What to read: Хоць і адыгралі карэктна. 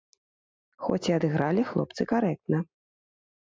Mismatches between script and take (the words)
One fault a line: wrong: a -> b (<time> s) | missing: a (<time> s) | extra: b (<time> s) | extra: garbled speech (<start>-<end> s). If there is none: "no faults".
extra: хлопцы (1.7 s)